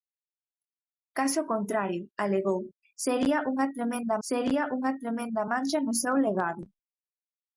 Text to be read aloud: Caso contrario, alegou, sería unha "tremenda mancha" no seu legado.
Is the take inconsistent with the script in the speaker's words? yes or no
yes